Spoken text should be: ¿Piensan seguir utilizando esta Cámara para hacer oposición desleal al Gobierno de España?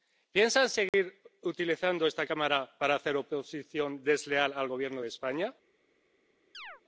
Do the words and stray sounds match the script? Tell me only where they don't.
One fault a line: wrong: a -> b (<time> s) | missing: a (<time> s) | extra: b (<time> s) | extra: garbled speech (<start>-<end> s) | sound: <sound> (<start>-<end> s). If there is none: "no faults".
sound: dropout (0.9-0.9 s)
sound: chirp (6.5-6.8 s)